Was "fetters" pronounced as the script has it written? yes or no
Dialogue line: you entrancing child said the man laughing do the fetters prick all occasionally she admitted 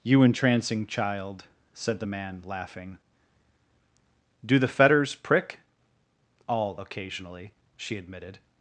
yes